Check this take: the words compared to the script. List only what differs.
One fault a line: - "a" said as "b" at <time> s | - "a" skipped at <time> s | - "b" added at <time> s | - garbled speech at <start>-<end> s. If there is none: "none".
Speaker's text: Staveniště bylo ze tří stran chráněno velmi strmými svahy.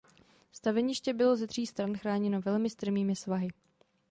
none